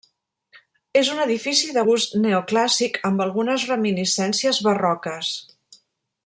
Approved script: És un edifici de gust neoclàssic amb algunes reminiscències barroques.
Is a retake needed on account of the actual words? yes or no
no